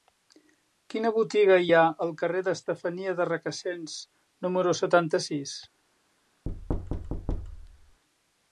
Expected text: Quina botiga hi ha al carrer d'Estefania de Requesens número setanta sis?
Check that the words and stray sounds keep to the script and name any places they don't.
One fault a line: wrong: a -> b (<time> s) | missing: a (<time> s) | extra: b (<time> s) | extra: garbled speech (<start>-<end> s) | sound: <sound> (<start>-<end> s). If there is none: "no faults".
sound: thud (6.5-8.0 s)